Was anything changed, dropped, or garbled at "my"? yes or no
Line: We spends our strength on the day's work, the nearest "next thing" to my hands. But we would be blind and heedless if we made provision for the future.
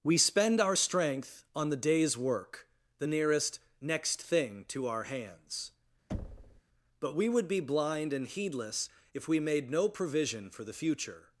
yes